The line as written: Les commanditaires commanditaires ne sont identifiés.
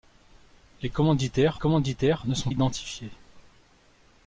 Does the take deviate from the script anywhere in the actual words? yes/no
no